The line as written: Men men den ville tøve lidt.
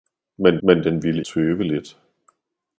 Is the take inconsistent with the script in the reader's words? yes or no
no